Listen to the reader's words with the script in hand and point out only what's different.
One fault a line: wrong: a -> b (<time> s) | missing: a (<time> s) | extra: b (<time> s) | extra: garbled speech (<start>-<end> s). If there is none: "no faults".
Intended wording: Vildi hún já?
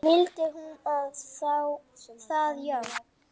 extra: það (2.3 s)